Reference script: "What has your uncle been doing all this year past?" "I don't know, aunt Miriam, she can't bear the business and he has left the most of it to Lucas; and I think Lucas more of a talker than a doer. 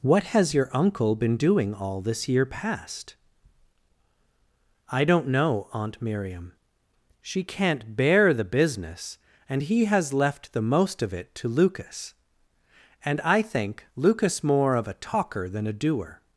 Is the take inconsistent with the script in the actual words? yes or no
no